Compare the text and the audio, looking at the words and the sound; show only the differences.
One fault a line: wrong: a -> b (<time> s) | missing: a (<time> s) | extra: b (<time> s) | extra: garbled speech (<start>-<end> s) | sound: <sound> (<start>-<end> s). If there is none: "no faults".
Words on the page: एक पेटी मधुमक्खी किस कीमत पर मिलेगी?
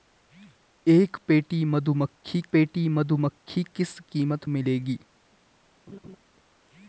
extra: पेटी मधुमक्खी (2.5 s)
missing: पर (4.4 s)
sound: laugh (5.9-6.2 s)